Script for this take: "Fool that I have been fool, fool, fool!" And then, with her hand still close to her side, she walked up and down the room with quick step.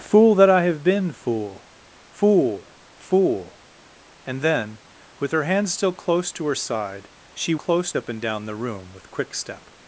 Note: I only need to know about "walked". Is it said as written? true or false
false